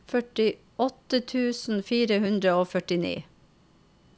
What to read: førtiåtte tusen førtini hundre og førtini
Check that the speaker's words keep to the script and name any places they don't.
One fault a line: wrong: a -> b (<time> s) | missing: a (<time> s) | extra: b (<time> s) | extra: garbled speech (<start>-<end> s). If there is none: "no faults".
wrong: førtini -> fire (1.9 s)